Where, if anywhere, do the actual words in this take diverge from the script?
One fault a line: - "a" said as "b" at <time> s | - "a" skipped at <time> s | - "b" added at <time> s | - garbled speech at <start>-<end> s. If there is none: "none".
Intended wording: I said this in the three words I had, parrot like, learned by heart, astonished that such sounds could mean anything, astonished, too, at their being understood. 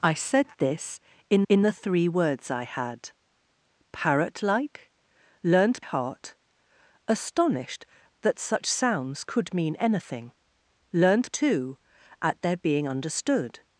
- "in" added at 1.5 s
- "by" skipped at 5.8 s
- "astonished" said as "learned" at 10.9 s